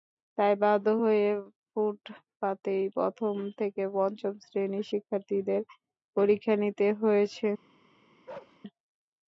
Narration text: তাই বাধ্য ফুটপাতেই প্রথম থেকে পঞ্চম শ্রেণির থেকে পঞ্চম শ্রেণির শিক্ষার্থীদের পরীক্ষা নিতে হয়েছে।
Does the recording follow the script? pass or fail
fail